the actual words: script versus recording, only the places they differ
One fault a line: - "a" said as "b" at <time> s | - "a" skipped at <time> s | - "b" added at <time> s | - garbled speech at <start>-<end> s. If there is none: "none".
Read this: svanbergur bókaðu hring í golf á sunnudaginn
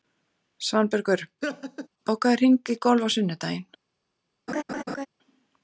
none